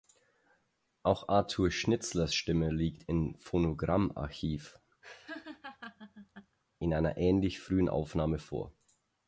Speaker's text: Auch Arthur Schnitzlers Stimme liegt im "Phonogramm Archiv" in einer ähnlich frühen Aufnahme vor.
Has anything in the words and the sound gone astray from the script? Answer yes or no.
yes